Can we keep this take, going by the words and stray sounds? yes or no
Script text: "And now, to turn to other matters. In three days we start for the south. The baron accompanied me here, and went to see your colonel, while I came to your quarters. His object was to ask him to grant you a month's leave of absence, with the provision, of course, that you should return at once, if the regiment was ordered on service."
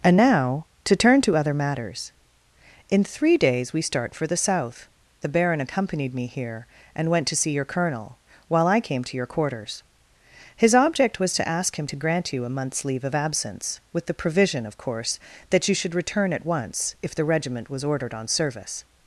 yes